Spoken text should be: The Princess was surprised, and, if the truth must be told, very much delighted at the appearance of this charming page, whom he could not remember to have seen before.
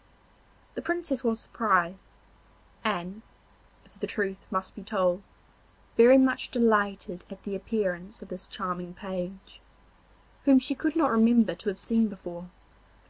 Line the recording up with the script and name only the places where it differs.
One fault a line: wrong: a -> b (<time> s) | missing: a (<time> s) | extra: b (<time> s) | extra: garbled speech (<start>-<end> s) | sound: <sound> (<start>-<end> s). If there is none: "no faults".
wrong: he -> she (10.6 s)